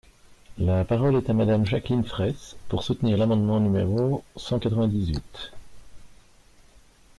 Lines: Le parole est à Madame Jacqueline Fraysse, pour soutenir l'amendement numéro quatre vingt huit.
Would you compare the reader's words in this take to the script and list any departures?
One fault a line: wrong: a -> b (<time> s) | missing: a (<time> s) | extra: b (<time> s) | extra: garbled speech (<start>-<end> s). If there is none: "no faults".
wrong: Le -> La (0.6 s)
extra: cent (4.3 s)
extra: dix (4.9 s)